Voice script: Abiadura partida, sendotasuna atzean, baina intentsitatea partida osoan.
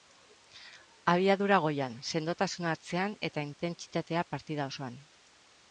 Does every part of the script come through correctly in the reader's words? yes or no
no